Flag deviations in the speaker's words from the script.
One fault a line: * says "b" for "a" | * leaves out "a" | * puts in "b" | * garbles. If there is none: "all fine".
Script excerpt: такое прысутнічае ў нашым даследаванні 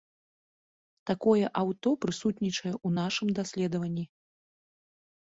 * puts in "аўто"